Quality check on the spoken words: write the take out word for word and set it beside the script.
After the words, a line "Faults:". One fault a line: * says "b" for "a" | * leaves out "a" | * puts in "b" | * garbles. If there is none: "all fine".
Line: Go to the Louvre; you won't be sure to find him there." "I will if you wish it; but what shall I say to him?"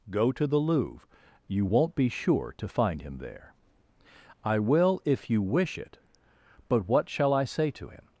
Go to the Louvre; you won't be sure to find him there." "I will if you wish it; but what shall I say to him?"
Faults:
all fine